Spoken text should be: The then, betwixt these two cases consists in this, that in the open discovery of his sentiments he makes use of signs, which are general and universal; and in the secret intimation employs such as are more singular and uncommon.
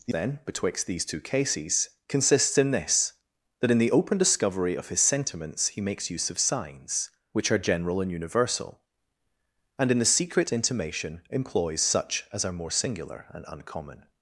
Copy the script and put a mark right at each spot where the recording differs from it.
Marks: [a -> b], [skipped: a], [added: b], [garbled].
The then, betwixt these two cases consists in this, that in the open discovery of his sentiments he makes use of signs, which are general and universal; and in the secret intimation employs such as are more singular and uncommon.